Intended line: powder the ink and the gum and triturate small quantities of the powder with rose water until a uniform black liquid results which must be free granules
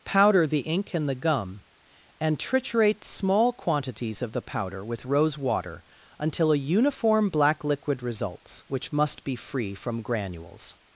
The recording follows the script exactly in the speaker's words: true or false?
false